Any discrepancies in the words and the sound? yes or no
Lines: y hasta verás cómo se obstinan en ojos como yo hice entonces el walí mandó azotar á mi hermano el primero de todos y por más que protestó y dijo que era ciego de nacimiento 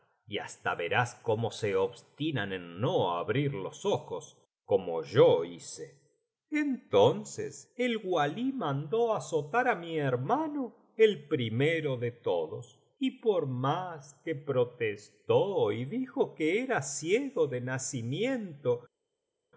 yes